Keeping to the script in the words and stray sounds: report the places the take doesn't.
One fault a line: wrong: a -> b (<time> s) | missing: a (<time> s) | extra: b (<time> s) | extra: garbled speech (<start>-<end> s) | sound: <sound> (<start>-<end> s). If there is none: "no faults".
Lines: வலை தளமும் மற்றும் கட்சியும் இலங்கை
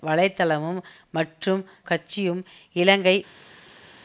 no faults